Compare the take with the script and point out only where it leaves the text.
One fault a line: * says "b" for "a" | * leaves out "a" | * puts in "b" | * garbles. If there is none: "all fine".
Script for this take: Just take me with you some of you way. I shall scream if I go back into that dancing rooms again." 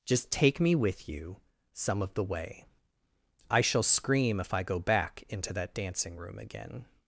* says "the" for "you"
* says "room" for "rooms"